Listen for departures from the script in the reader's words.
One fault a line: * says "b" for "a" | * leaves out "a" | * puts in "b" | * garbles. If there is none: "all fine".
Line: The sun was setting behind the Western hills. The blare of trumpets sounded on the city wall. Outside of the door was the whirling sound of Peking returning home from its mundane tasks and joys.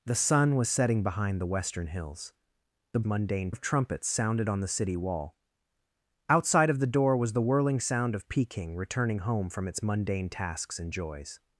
* says "mundane" for "blare"